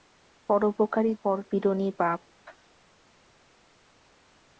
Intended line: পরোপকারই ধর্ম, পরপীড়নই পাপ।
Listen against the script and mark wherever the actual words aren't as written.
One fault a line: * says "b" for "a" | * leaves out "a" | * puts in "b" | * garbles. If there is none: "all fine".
* leaves out "ধর্ম"